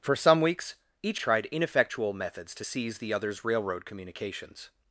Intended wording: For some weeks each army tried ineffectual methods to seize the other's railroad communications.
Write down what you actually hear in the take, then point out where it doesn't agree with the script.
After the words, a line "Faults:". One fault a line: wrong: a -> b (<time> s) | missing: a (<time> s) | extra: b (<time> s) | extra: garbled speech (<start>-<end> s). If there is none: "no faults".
For some weeks each tried ineffectual methods to seize the other's railroad communications.
Faults:
missing: army (1.2 s)